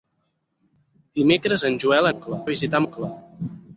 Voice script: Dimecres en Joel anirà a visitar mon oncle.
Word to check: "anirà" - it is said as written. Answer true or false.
false